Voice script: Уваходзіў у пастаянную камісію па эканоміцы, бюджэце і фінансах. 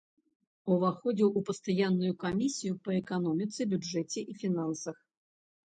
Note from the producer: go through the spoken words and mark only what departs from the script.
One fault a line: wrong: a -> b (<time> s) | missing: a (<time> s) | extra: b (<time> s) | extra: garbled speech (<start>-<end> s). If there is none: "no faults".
no faults